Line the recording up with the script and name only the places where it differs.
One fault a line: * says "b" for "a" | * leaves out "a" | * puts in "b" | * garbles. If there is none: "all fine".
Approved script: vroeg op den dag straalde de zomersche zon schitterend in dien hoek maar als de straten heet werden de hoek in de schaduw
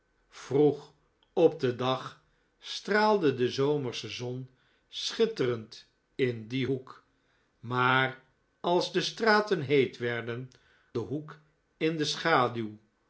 all fine